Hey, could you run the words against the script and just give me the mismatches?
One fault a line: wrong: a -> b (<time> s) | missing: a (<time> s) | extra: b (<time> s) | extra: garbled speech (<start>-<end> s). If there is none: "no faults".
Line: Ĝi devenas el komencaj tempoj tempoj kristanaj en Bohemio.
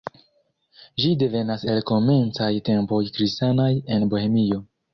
missing: tempoj (3.0 s)